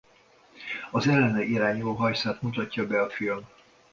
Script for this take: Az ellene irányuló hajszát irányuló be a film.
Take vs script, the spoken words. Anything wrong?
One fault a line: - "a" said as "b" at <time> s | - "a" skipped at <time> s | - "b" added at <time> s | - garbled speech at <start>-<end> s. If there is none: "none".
- "irányuló" said as "mutatja" at 2.4 s